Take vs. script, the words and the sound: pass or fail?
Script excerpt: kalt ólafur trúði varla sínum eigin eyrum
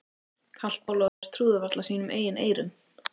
fail